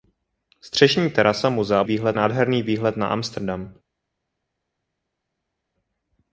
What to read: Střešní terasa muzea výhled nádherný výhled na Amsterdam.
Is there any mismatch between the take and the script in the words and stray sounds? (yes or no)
no